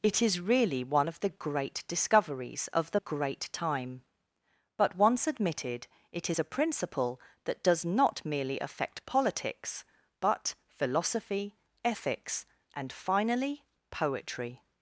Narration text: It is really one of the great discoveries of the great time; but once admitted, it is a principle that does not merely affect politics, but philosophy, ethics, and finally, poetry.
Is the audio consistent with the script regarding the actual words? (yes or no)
yes